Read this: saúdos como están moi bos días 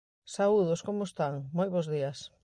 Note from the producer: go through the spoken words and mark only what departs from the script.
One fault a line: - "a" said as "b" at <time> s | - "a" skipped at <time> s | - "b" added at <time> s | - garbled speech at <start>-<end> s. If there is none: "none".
none